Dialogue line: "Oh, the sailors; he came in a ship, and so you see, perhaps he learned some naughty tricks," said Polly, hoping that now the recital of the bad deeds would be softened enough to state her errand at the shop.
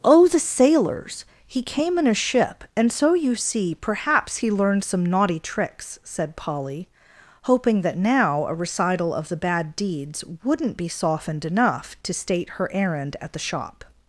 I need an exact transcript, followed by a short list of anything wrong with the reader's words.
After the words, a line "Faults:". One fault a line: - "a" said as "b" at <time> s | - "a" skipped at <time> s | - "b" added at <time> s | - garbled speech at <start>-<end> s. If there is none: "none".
"Oh, the sailors; he came in a ship, and so you see, perhaps he learned some naughty tricks," said Polly, hoping that now a recital of the bad deeds wouldn't be softened enough to state her errand at the shop.
Faults:
- "the" said as "a" at 8.5 s
- "would" said as "wouldn't" at 10.4 s